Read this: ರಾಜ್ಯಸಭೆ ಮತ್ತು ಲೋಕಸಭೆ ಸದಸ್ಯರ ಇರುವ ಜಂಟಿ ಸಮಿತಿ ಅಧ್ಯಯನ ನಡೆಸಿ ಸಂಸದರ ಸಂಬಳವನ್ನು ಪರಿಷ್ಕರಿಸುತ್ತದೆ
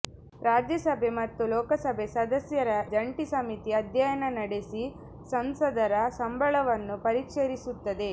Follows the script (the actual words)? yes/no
no